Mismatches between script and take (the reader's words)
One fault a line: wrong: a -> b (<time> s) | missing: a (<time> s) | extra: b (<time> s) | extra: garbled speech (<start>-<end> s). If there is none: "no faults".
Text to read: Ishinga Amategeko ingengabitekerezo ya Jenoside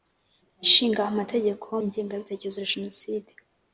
no faults